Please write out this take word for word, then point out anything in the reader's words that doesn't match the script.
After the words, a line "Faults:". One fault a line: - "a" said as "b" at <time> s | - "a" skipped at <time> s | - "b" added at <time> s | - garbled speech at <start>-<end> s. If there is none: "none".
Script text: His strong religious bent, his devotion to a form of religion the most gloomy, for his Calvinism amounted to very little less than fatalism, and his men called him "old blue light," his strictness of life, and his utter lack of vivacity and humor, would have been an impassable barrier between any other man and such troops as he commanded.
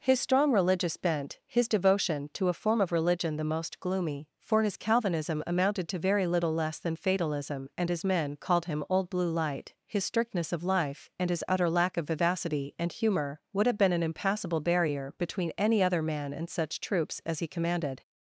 His strong religious bent, his devotion to a form of religion the most gloomy, for his Calvinism amounted to very little less than fatalism, and his men called him "old blue light," his strictness of life, and his utter lack of vivacity and humor, would have been an impassable barrier between any other man and such troops as he commanded.
Faults:
none